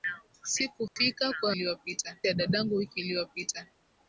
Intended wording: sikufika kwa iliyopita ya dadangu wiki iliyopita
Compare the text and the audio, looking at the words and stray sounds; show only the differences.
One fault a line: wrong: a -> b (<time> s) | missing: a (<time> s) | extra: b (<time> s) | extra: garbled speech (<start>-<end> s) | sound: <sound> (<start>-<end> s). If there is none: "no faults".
sound: dropout (0.9-1.0 s)